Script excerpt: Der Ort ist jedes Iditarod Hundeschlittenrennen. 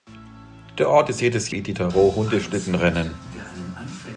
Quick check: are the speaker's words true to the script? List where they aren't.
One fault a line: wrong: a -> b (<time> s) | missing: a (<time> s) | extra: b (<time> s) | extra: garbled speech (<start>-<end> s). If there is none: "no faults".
no faults